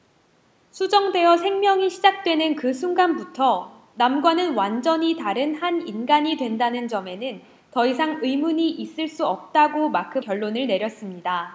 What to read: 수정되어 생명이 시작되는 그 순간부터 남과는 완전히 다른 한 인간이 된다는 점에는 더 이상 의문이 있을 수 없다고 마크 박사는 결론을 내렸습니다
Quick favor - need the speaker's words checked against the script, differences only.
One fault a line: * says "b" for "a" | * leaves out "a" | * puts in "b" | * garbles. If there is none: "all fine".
* leaves out "박사는"